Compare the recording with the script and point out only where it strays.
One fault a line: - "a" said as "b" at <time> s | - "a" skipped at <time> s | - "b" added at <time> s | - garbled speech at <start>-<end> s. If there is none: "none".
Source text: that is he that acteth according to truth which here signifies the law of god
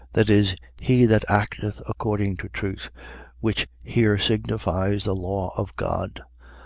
none